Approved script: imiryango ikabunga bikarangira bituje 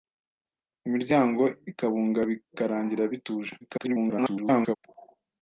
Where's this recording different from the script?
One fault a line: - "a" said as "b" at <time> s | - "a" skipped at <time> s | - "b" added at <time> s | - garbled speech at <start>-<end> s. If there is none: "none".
- garbled speech at 3.6-4.8 s